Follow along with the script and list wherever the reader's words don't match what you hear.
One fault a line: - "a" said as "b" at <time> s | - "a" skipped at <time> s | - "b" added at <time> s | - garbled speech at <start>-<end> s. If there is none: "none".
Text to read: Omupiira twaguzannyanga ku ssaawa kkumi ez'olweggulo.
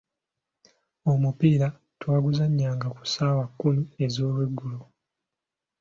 none